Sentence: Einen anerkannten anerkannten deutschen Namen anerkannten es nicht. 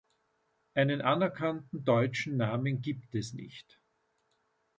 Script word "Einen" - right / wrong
right